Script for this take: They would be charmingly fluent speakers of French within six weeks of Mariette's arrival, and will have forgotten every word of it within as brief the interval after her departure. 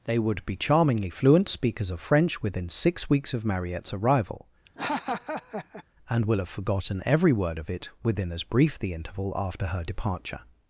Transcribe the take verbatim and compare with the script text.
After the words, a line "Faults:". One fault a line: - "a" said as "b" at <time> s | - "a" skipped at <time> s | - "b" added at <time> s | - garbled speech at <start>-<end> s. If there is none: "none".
They would be charmingly fluent speakers of French within six weeks of Mariette's arrival, and will have forgotten every word of it within as brief the interval after her departure.
Faults:
none